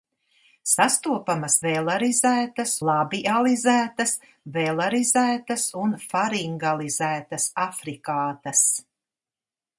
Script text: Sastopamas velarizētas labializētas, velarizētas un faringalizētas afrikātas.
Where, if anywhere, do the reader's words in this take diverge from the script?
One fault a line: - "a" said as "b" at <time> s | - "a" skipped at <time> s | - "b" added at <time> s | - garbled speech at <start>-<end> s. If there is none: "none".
none